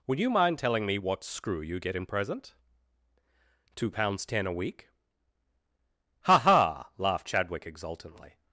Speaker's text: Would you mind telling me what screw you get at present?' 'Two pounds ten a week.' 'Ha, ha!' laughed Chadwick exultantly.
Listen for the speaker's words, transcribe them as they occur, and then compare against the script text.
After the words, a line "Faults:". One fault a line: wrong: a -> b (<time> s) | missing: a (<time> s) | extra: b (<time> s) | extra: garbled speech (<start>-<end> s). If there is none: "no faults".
Would you mind telling me what screw you get in present?' 'Two pounds ten a week.' 'Ha, ha!' laughed Chadwick exultantly.
Faults:
wrong: at -> in (1.9 s)